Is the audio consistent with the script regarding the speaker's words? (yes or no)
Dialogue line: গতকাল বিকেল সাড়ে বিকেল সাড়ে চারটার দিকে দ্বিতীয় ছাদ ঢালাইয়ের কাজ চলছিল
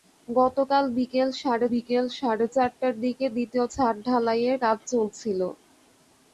yes